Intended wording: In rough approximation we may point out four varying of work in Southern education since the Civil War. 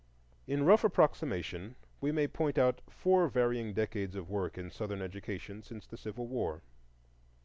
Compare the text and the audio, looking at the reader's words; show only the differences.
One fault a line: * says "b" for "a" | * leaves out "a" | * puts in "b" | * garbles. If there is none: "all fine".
* puts in "decades"